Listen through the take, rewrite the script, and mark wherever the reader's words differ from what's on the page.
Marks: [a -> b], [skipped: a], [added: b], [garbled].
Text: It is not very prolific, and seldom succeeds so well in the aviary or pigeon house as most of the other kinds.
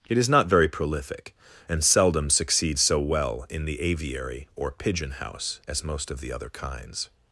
It is not very prolific, and seldom succeeds so well in the aviary or pigeon house as most of the other kinds.